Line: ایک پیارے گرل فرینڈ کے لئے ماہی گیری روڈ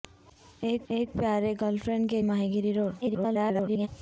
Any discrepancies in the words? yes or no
yes